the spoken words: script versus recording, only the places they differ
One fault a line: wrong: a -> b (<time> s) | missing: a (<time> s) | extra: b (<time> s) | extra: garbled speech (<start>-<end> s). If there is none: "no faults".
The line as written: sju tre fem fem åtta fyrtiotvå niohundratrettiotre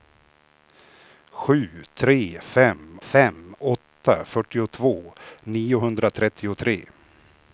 no faults